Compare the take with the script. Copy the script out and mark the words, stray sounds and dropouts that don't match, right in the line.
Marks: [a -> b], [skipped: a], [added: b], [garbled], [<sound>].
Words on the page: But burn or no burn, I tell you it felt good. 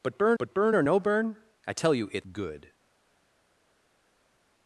But burn [added: but burn] or no burn, I tell you it [skipped: felt] good.